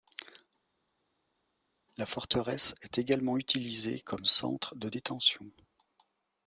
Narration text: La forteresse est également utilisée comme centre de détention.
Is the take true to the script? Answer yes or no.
yes